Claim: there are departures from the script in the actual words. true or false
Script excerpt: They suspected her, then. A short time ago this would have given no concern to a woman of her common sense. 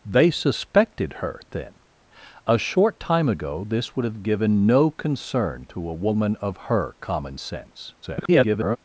true